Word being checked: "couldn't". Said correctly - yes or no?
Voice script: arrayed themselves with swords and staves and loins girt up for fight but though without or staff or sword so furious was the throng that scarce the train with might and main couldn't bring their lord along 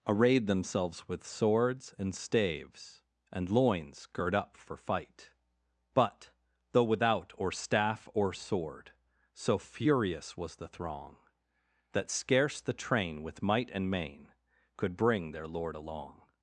no